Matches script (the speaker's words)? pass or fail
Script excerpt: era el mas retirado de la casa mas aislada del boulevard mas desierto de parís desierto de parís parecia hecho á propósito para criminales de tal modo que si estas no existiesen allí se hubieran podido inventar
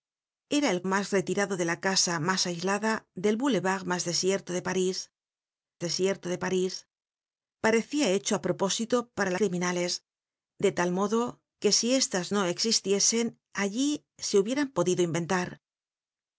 pass